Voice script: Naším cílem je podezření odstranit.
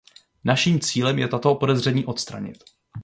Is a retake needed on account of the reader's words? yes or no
yes